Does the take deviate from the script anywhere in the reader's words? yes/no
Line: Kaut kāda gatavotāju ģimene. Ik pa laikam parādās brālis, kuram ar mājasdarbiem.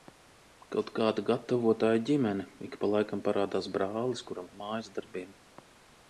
no